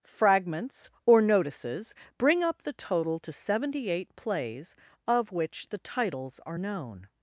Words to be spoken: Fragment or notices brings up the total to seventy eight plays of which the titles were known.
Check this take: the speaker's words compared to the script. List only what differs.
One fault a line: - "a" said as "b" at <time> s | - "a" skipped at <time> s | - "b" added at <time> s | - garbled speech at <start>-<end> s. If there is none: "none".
- "Fragment" said as "Fragments" at 0.0 s
- "brings" said as "bring" at 2.2 s
- "were" said as "are" at 6.4 s